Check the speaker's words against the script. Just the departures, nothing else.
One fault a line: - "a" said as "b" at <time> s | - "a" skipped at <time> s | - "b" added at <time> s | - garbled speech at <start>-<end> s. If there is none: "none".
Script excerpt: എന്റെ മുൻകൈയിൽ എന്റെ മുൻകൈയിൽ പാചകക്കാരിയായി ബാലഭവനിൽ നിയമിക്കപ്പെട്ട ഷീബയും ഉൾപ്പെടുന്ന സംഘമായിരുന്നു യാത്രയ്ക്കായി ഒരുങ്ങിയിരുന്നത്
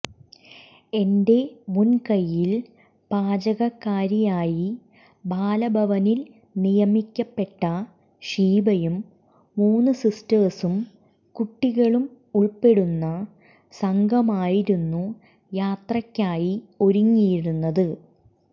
- "എന്റെ മുൻകൈയിൽ" skipped at 2.5 s
- "മൂന്ന് സിസ്റ്റേഴ്സും കുട്ടികളും" added at 9.6 s